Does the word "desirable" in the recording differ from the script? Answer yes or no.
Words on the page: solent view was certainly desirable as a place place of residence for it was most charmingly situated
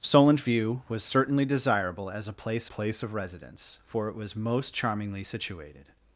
no